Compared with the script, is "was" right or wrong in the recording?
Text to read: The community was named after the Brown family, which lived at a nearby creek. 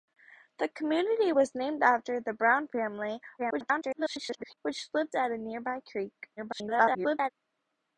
right